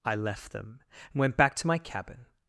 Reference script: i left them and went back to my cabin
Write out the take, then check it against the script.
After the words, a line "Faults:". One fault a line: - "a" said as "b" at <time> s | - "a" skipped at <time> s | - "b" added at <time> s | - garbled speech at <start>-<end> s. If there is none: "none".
i left them and went back to my cabin
Faults:
none